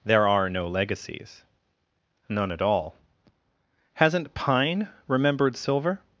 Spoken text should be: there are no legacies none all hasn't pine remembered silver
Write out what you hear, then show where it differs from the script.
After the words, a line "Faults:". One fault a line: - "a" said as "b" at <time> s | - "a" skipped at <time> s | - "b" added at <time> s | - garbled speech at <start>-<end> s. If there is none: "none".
there are no legacies none at all hasn't pine remembered silver
Faults:
- "at" added at 2.5 s